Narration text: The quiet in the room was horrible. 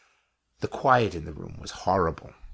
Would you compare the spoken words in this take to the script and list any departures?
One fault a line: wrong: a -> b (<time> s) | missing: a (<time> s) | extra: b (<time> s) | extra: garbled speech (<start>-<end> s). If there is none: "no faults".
no faults